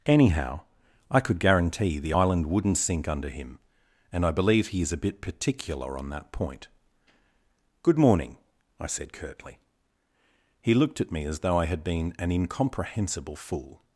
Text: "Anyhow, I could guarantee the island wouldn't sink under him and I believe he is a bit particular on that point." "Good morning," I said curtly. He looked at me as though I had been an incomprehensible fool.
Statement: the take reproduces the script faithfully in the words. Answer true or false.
true